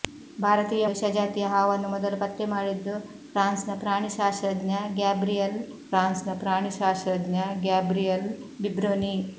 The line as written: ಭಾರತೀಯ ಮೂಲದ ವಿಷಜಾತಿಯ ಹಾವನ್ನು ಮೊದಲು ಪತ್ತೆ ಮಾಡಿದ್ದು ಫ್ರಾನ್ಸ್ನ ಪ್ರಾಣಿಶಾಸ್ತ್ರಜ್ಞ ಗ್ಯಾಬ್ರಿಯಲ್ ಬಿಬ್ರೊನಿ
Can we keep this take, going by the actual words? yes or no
no